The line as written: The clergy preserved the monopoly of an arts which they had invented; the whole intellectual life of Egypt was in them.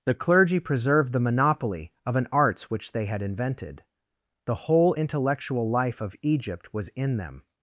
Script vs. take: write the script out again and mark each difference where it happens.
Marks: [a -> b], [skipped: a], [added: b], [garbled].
The clergy preserved the monopoly of an arts which they had invented; the whole intellectual life of Egypt was in them.